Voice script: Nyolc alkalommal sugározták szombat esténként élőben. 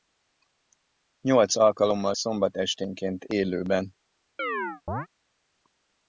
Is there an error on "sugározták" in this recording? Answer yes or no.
yes